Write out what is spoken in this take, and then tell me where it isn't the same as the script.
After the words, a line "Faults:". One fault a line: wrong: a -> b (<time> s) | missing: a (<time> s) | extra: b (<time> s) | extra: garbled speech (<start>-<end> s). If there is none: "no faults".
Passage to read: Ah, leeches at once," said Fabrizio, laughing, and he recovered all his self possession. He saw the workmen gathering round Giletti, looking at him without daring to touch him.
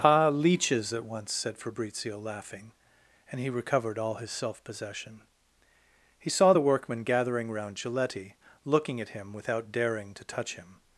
Ah, leeches at once," said Fabrizio, laughing, and he recovered all his self possession. He saw the workmen gathering round Giletti, looking at him without daring to touch him.
Faults:
no faults